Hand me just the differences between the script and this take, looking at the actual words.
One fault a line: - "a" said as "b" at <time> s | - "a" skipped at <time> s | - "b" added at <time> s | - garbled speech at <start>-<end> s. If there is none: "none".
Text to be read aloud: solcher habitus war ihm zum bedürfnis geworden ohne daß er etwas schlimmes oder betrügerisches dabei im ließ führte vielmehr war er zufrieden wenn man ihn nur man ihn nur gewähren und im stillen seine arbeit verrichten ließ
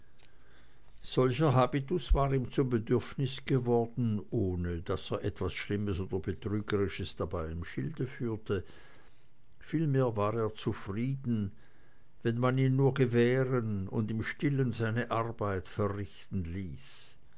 - "ließ" said as "schilde" at 7.6 s
- "man ihn nur" skipped at 12.9 s